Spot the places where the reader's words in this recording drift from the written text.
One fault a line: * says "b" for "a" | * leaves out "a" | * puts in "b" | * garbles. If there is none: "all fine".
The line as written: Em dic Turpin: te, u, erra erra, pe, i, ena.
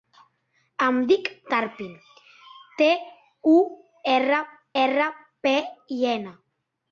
all fine